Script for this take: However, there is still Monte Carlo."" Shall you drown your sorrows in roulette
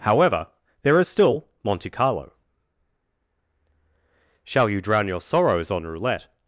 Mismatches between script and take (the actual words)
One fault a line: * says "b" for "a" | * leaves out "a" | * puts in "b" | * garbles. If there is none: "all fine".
* says "on" for "in"